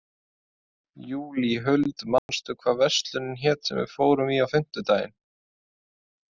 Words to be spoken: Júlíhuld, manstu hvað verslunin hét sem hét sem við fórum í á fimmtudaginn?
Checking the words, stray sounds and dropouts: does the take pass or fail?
fail